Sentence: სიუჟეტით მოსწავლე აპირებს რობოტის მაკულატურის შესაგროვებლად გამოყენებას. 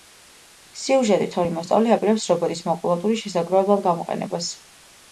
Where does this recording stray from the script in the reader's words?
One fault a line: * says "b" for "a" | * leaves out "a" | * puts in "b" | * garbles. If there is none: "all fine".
* puts in "ორი"